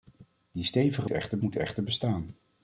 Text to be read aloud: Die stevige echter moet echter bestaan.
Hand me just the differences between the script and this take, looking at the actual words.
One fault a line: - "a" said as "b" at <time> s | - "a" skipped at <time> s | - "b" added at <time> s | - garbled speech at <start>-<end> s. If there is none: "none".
none